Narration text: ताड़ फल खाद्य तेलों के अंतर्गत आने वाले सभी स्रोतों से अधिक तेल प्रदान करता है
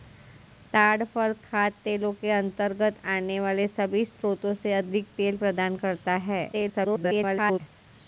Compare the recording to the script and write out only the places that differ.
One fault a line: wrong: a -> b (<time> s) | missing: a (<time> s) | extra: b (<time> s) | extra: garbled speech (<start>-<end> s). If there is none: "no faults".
extra: garbled speech (6.5-7.6 s)